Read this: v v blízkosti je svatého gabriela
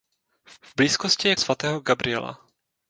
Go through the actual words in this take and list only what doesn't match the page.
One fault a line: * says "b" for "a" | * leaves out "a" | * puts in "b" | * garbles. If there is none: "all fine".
all fine